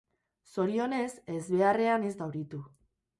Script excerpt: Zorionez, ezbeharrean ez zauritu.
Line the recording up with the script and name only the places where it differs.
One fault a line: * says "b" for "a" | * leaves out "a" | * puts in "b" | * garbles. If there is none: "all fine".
all fine